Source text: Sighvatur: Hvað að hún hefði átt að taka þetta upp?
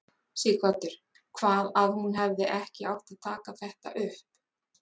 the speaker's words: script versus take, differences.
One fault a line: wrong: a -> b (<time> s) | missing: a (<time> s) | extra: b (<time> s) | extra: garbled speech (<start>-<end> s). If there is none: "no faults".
extra: ekki (2.6 s)